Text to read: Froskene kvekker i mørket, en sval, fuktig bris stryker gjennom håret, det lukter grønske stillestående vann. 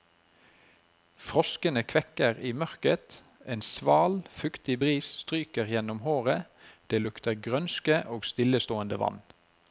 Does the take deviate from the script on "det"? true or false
false